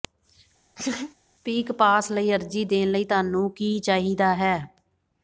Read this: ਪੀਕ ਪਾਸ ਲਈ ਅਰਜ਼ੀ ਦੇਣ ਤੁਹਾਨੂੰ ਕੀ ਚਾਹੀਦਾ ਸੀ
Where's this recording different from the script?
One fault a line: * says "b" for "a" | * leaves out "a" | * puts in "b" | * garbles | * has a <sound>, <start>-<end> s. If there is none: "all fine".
* has a laugh, 0.8-1.1 s
* puts in "ਲਈ"
* says "ਹੈ" for "ਸੀ"